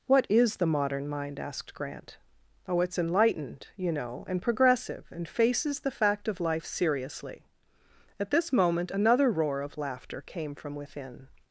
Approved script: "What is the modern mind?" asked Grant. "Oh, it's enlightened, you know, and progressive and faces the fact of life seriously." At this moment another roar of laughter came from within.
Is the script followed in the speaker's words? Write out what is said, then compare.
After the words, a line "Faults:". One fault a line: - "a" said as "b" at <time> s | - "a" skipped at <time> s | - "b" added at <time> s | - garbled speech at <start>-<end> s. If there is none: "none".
"What is the modern mind?" asked Grant. "Oh, it's enlightened, you know, and progressive and faces the fact of life seriously." At this moment another roar of laughter came from within.
Faults:
none